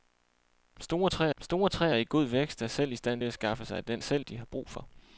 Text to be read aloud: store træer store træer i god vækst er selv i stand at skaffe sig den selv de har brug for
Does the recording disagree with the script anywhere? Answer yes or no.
no